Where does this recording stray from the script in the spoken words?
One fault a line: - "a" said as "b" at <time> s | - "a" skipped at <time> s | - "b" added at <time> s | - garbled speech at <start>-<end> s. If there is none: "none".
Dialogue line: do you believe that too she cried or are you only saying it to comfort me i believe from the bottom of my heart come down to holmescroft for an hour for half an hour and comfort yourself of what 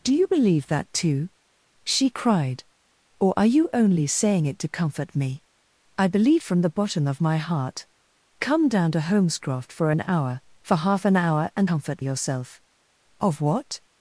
none